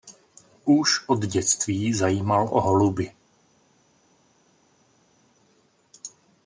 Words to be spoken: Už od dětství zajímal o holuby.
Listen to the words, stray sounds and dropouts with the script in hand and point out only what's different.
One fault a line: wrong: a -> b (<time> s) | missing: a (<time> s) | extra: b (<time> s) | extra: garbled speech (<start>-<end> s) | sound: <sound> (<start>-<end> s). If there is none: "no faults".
no faults